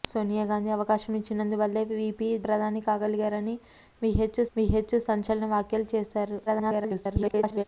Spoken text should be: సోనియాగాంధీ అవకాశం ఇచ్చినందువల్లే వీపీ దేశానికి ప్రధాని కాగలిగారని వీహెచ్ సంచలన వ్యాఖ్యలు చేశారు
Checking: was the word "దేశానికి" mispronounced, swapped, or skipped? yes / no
yes